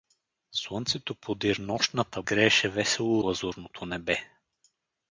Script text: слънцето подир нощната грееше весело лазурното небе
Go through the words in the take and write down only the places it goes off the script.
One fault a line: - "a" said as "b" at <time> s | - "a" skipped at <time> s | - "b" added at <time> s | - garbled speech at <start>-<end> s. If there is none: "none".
none